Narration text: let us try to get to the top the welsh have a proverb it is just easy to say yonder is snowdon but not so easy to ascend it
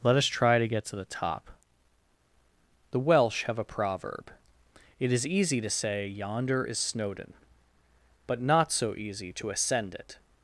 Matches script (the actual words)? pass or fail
fail